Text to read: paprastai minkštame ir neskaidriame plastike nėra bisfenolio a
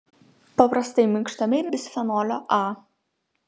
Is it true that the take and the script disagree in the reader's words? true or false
true